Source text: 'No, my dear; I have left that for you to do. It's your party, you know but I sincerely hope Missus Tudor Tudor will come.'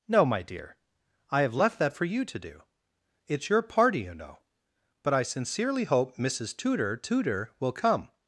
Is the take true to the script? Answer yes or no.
yes